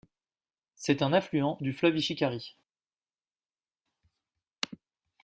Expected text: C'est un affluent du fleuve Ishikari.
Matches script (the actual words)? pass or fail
pass